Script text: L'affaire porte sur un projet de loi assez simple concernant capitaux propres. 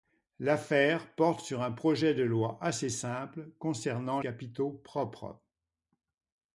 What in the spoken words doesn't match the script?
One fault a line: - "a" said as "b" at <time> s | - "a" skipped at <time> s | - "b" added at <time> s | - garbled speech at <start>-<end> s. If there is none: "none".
none